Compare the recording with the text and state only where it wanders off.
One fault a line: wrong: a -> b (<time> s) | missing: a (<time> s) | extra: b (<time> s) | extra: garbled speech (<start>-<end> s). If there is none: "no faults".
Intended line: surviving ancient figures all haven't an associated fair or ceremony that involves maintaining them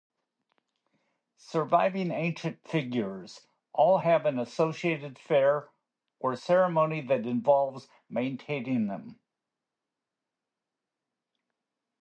wrong: haven't -> have (4.0 s)